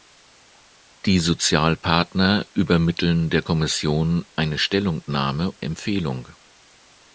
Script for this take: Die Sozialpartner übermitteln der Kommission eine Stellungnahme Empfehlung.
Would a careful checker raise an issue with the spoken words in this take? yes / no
no